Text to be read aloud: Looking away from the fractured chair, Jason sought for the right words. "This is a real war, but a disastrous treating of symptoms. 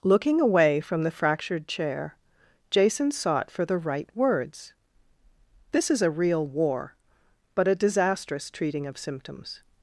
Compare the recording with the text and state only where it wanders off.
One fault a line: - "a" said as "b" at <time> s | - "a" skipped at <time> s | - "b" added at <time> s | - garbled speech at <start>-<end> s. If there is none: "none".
none